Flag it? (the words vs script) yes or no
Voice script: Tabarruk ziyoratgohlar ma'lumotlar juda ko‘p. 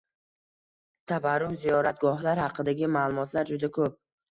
yes